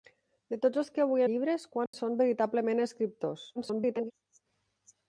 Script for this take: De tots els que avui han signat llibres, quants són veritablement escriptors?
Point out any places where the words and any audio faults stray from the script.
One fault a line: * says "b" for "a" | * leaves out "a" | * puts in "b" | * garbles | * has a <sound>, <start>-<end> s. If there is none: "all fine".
* leaves out "han signat"
* has a dropout, 1.9-1.9 s
* garbles